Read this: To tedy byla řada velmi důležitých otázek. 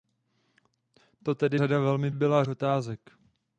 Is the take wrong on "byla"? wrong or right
wrong